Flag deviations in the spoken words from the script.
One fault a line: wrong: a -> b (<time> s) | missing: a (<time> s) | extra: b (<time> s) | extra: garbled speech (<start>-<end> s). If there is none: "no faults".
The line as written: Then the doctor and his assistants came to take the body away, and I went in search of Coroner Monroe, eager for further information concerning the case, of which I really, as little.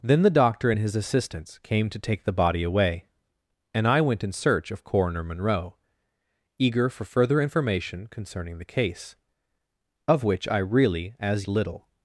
no faults